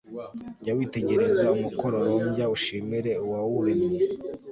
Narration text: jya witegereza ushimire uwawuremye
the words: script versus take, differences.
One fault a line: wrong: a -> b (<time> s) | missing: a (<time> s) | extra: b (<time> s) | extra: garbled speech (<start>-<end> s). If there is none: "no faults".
extra: umukororombya (1.6 s)